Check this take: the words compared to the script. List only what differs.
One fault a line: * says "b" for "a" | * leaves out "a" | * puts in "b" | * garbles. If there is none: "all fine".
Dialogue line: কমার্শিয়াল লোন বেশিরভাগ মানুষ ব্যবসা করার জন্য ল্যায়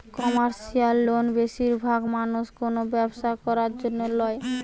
* puts in "কোনো"